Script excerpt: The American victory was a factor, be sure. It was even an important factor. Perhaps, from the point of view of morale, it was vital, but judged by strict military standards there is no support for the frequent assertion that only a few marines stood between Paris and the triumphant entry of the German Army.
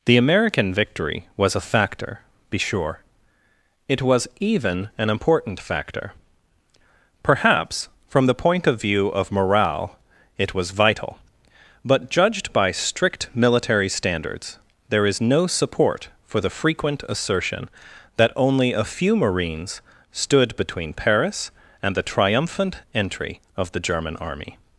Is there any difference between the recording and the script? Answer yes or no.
no